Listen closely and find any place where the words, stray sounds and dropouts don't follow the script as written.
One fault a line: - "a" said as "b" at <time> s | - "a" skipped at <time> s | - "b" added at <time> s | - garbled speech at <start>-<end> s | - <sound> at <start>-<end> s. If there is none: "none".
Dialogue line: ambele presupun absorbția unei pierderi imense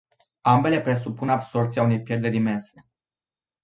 none